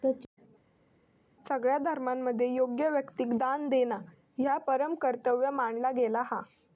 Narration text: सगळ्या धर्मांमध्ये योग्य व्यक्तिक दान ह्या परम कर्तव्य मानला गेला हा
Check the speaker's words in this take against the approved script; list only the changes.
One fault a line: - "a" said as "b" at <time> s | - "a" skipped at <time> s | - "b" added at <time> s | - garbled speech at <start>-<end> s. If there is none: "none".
- "देणा" added at 3.7 s